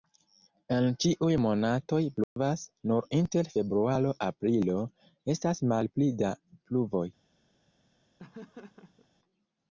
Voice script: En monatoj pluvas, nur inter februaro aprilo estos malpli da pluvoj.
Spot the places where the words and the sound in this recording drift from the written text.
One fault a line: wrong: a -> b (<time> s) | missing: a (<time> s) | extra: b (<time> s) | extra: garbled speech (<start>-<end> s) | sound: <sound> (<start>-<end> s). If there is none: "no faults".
extra: ĉiuj (1.0 s)
sound: dropout (2.2-2.4 s)
wrong: estos -> estas (5.4 s)
sound: laugh (8.2-9.1 s)